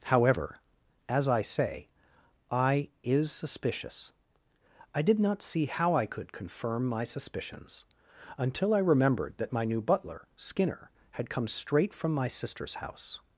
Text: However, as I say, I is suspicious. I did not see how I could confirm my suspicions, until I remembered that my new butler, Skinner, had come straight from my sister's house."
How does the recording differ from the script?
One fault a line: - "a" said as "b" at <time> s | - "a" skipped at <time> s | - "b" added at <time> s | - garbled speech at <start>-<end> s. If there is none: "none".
none